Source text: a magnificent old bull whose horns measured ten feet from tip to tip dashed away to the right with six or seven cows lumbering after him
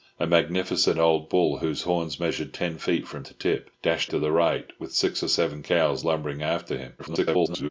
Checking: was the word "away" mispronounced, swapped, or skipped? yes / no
yes